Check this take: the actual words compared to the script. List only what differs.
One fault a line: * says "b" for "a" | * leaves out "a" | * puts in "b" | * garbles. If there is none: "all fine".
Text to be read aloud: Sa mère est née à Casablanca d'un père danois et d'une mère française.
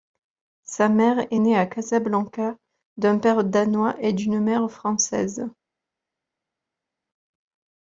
all fine